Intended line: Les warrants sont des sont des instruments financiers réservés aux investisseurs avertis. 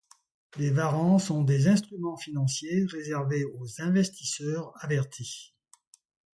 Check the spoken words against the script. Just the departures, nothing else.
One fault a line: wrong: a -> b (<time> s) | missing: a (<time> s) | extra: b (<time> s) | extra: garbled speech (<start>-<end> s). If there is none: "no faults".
missing: sont des (1.7 s)